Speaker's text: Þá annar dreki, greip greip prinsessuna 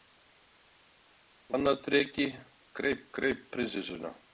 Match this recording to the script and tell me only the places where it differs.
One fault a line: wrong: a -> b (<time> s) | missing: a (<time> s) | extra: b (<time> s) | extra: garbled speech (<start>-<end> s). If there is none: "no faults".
no faults